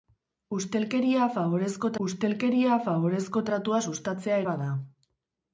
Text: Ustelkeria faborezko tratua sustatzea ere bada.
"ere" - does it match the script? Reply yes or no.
no